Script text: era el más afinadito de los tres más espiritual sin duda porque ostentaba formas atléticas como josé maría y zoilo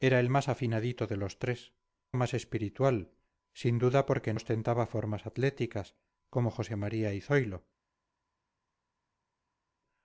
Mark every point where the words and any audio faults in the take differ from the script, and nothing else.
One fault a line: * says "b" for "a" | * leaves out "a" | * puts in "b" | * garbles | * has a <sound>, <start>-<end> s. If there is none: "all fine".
all fine